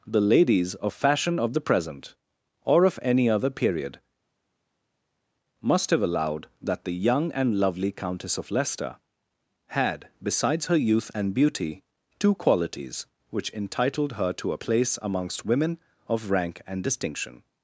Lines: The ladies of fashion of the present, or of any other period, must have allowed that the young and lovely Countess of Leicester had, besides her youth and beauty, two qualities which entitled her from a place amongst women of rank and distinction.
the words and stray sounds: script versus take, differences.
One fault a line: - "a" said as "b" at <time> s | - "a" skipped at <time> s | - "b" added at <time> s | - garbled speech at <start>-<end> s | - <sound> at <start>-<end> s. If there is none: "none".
- "from" said as "to" at 14.3 s